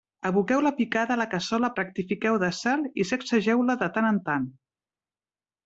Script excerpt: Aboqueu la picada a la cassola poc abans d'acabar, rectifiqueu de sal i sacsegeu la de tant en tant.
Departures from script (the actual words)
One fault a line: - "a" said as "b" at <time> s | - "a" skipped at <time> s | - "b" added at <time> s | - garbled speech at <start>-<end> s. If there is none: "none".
- "poc abans d'acabar" skipped at 1.7 s